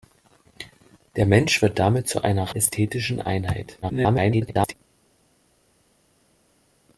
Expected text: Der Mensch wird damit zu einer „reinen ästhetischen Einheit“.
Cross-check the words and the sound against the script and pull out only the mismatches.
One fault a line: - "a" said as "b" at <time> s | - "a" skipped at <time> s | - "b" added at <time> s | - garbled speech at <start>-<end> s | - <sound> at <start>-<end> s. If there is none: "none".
- "reinen" skipped at 2.5 s
- garbled speech at 3.8-4.7 s